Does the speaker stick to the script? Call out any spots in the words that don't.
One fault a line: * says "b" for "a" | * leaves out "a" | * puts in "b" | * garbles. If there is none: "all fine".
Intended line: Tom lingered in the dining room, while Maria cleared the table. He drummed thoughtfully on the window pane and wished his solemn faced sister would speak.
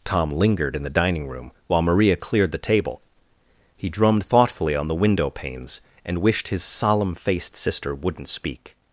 * says "panes" for "pane"
* says "wouldn't" for "would"